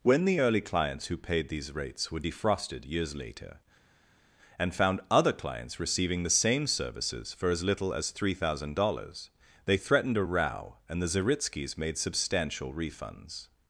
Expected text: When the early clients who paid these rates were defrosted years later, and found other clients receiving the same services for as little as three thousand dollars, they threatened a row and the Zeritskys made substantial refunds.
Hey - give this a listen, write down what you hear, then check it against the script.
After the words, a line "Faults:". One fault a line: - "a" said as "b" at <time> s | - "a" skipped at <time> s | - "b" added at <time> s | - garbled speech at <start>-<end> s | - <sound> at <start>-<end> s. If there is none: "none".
When the early clients who paid these rates were defrosted years later, and found other clients receiving the same services for as little as three thousand dollars, they threatened a row and the Zeritskys made substantial refunds.
Faults:
none